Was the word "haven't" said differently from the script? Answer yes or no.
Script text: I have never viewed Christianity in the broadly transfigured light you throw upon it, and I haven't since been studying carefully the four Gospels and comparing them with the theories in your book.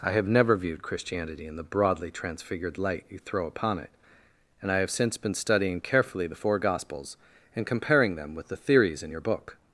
yes